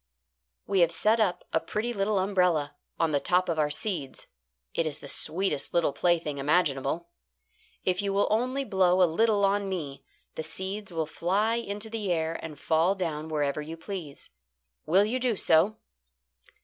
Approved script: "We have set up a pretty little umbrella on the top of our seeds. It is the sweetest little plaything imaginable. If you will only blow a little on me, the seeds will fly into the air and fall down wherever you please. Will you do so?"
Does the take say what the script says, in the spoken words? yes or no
yes